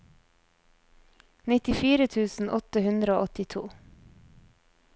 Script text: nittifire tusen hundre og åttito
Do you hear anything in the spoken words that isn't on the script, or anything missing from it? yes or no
yes